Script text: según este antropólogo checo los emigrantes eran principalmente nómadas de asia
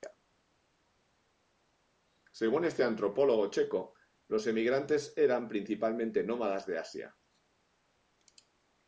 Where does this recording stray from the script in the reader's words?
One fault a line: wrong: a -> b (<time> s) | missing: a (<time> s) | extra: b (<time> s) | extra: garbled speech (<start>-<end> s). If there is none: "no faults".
no faults